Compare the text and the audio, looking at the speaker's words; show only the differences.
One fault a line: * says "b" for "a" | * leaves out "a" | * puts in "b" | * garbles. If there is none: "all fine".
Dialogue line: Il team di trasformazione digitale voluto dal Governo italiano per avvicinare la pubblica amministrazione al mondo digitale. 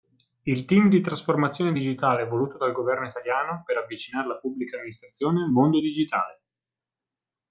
all fine